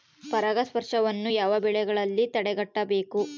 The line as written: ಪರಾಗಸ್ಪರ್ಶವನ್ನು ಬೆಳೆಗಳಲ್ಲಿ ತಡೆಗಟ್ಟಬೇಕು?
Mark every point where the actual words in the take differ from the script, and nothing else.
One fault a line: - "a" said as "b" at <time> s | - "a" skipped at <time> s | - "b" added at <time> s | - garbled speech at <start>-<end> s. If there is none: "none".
- "ಯಾವ" added at 1.3 s